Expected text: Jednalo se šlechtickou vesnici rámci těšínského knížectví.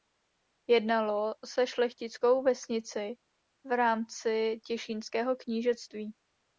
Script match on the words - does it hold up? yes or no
no